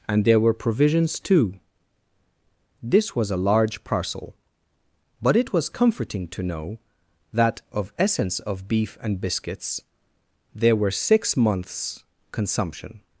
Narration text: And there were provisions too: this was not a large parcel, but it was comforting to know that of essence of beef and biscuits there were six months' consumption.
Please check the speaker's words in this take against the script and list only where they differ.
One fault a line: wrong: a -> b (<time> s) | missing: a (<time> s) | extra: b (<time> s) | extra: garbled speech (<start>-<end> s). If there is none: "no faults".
missing: not (3.3 s)